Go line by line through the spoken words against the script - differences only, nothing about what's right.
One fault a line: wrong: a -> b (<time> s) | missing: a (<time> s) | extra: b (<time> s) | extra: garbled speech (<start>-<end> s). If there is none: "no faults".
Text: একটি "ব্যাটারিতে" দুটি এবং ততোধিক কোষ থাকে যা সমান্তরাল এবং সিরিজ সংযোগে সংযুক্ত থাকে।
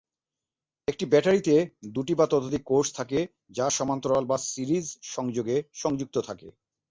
wrong: এবং -> বা (2.1 s)
wrong: এবং -> বা (4.2 s)